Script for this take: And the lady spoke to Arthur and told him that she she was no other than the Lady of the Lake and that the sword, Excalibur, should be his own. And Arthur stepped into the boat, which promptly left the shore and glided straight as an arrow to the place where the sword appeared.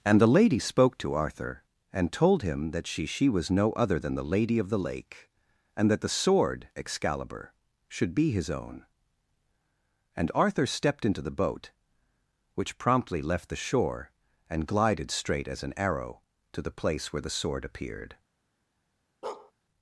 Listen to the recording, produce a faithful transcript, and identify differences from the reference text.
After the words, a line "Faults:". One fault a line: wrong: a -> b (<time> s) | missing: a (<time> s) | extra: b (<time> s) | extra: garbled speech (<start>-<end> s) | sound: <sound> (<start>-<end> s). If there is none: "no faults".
And the lady spoke to Arthur and told him that she she was no other than the Lady of the Lake and that the sword, Excalibur, should be his own. And Arthur stepped into the boat, which promptly left the shore and glided straight as an arrow to the place where the sword appeared.
Faults:
sound: bark (19.2-19.5 s)